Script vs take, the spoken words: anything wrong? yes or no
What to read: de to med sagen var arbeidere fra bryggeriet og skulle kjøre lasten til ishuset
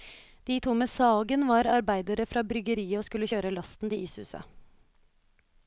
no